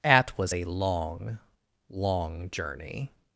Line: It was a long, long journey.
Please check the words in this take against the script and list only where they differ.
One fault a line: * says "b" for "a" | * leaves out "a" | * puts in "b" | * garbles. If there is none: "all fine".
* says "At" for "It"